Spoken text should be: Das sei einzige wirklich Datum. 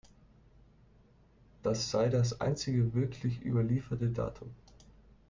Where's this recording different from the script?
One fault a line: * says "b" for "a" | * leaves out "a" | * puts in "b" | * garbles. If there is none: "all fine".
* puts in "das"
* puts in "überlieferte"